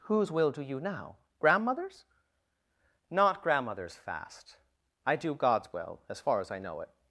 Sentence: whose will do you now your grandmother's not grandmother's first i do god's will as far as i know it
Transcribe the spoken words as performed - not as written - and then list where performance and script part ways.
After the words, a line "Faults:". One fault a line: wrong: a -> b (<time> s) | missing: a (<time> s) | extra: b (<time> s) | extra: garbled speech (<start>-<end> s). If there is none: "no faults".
whose will do you now grandmother's not grandmother's fast i do god's will as far as i know it
Faults:
missing: your (1.2 s)
wrong: first -> fast (4.0 s)